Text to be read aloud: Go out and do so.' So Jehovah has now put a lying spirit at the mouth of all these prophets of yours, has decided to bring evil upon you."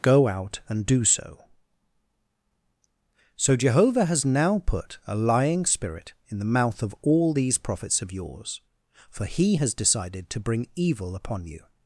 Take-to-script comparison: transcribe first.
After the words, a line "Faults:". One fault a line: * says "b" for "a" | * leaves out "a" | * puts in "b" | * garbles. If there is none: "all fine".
Go out and do so.' So Jehovah has now put a lying spirit in the mouth of all these prophets of yours, for he has decided to bring evil upon you."
Faults:
* says "in" for "at"
* puts in "for he"